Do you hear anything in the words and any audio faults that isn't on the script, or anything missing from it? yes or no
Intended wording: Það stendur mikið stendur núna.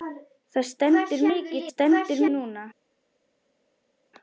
no